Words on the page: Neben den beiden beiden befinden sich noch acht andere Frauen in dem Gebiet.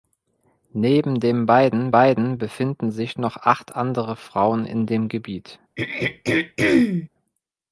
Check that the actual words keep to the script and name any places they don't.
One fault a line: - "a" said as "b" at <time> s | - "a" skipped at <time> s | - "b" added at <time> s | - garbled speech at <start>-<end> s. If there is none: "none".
none